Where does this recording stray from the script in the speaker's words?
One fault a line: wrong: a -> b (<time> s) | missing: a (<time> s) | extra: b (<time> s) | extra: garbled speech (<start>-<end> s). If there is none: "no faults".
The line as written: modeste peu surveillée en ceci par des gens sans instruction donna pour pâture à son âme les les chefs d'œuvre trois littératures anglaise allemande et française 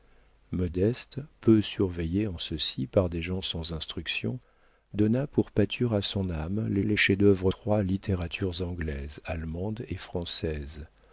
no faults